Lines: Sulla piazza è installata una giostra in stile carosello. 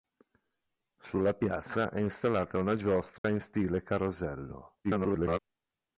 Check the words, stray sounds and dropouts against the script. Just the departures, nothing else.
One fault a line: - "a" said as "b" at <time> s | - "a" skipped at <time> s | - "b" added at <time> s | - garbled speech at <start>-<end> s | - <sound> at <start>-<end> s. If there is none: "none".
- dropout at 3.2-3.2 s
- garbled speech at 4.8-5.4 s